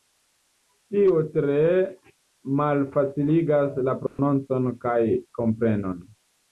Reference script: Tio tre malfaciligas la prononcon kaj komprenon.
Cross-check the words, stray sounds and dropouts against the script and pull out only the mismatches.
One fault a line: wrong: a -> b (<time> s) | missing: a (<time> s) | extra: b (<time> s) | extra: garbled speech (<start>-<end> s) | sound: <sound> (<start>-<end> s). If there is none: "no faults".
sound: dropout (4.1-4.2 s)